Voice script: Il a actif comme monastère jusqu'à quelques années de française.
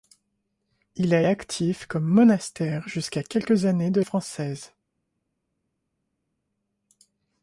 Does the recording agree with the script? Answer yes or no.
yes